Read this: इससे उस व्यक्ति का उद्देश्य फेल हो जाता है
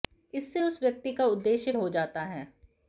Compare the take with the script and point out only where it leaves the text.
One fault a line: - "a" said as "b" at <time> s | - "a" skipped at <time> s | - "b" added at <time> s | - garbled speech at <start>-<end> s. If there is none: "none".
- "फेल" skipped at 1.7 s